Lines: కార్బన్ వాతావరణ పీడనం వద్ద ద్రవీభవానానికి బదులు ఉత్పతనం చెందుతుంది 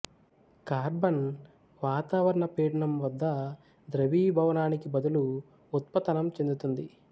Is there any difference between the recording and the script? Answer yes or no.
no